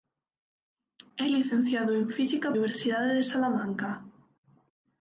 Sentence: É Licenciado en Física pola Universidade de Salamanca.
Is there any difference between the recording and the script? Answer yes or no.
yes